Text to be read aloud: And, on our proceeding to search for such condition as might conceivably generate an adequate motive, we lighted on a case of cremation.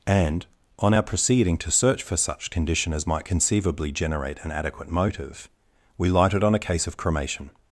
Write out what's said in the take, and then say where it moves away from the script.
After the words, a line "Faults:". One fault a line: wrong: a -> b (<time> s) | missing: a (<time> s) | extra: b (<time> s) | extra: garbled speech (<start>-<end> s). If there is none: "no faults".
And, on our proceeding to search for such condition as might conceivably generate an adequate motive, we lighted on a case of cremation.
Faults:
no faults